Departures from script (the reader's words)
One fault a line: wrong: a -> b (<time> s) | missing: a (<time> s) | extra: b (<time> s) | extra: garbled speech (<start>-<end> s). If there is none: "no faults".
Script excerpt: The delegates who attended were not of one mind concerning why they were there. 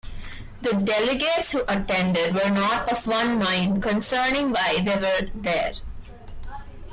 no faults